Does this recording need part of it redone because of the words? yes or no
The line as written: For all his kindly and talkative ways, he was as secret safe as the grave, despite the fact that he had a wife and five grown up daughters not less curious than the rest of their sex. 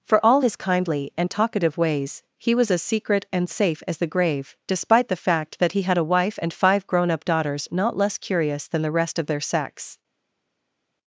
yes